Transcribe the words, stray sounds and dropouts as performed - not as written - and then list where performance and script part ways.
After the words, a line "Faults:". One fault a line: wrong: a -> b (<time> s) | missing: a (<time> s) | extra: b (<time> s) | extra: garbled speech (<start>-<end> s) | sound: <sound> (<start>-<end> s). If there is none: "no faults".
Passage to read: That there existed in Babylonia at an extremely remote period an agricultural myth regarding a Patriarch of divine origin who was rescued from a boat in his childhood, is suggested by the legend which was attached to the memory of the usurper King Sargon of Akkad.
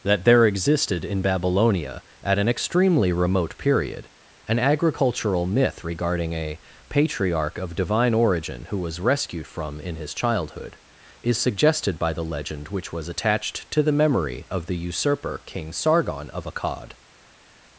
That there existed in Babylonia at an extremely remote period an agricultural myth regarding a Patriarch of divine origin who was rescued from in his childhood, is suggested by the legend which was attached to the memory of the usurper King Sargon of Akkad.
Faults:
missing: a boat (9.8 s)